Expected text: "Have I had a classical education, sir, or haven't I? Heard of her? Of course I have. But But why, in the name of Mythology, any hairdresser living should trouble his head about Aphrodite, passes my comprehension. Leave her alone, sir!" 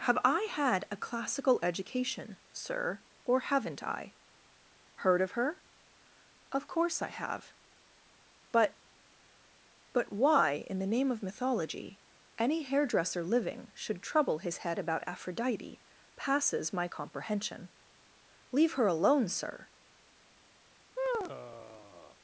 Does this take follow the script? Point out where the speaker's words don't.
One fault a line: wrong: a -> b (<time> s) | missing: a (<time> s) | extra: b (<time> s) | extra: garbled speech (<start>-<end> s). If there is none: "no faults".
no faults